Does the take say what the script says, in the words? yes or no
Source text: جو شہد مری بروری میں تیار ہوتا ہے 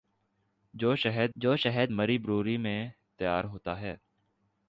no